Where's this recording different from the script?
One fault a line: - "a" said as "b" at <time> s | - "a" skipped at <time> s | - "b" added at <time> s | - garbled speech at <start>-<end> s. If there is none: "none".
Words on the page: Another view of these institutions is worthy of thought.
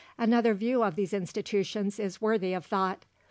none